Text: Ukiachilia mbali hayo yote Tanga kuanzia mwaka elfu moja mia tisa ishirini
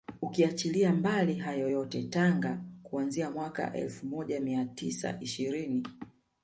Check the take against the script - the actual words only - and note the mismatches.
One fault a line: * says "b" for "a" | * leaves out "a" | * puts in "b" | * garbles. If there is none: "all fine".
all fine